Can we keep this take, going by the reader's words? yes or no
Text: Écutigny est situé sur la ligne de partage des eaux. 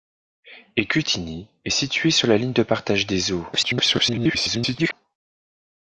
no